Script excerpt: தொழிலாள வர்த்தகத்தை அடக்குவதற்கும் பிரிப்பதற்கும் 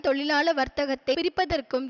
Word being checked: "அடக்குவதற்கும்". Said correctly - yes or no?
no